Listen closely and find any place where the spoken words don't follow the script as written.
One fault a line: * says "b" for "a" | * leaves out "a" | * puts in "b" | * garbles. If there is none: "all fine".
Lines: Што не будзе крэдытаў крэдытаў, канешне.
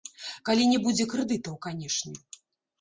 * says "Калі" for "Што"
* leaves out "крэдытаў"